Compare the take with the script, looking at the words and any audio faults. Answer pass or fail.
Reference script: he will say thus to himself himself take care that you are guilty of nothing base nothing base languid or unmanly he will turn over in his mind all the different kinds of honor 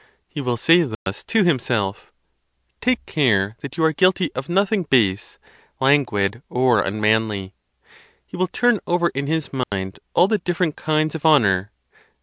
fail